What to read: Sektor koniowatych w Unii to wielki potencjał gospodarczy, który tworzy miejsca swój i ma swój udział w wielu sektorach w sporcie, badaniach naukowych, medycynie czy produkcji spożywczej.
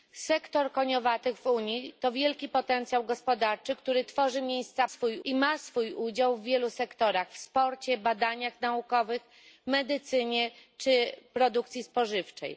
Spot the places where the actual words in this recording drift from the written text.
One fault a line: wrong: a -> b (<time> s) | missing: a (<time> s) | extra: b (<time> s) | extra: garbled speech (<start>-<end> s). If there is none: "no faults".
no faults